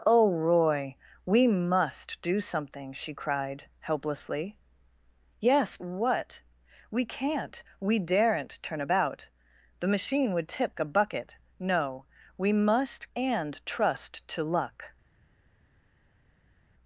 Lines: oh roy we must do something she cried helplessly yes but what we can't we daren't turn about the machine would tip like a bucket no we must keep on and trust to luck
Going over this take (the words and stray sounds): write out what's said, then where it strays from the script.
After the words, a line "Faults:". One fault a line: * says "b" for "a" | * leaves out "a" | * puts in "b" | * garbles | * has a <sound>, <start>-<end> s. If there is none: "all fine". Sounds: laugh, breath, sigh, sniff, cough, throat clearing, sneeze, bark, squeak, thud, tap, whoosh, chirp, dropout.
oh roy we must do something she cried helplessly yes what we can't we daren't turn about the machine would tip a bucket no we must and trust to luck
Faults:
* leaves out "but"
* leaves out "like"
* leaves out "keep on"